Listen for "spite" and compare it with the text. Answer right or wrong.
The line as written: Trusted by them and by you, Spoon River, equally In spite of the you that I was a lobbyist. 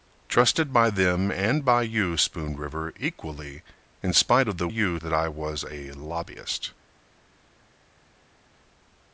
right